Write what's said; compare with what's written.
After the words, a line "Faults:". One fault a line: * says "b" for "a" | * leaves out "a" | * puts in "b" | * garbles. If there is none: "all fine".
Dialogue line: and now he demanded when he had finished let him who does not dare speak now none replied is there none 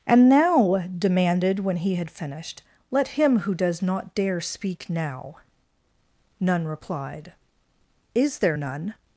and now demanded when he had finished let him who does not dare speak now none replied is there none
Faults:
* leaves out "he"